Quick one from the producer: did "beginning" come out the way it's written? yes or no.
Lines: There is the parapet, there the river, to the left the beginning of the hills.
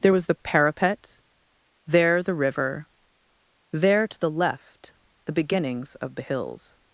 no